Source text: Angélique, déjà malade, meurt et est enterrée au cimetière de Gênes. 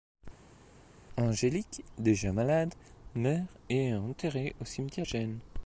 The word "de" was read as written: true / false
false